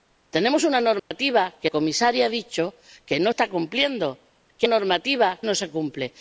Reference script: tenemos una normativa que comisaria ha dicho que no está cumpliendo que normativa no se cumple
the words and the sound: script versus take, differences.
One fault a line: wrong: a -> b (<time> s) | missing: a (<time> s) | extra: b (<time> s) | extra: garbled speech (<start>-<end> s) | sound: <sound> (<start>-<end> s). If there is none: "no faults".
sound: dropout (1.0-1.1 s)